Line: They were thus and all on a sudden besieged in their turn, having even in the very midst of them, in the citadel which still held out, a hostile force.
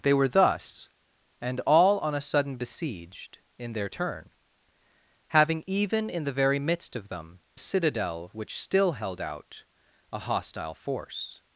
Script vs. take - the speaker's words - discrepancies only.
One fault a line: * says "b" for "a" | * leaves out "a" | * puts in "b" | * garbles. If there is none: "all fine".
* leaves out "in the"